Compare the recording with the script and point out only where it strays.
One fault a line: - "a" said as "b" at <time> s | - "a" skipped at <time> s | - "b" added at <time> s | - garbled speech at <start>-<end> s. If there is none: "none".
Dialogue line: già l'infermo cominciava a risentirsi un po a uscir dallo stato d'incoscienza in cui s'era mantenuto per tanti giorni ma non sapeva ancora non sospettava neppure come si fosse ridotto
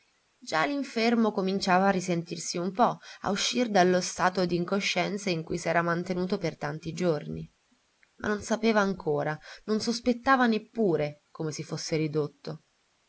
none